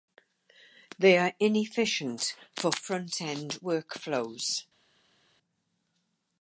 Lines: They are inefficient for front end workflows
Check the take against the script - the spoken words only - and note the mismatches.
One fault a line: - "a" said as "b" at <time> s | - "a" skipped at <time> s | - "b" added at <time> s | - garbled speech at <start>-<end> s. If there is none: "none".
none